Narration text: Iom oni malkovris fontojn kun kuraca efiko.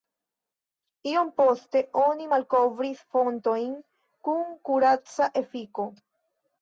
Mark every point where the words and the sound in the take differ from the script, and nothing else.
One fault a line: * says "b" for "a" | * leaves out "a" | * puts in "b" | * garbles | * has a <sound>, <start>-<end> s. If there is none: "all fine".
* puts in "poste"